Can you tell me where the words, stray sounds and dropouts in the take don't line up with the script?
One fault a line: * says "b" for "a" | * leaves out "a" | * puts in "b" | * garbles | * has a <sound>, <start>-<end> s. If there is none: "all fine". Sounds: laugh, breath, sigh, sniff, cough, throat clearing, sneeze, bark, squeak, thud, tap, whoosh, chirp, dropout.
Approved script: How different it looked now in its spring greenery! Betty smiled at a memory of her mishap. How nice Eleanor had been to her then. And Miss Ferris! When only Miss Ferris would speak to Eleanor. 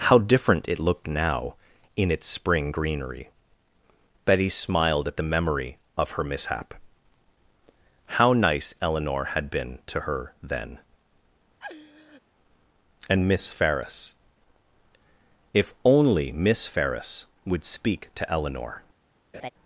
* says "the" for "a"
* has a laugh, 11.6-12.2 s
* says "If" for "When"
* has a laugh, 19.3-19.5 s